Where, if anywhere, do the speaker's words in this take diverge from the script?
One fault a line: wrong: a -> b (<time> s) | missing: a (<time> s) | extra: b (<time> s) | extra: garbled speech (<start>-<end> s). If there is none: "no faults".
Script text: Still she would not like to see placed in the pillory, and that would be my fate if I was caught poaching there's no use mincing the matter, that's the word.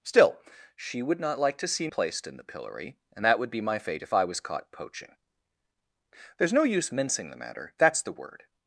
no faults